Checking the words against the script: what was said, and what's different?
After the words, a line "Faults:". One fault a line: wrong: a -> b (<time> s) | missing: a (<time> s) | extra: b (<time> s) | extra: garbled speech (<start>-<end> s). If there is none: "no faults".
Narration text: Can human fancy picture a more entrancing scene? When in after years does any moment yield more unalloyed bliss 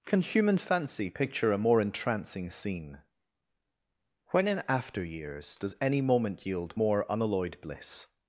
Can human fancy picture a more entrancing scene? When in after years does any moment yield more unalloyed bliss
Faults:
no faults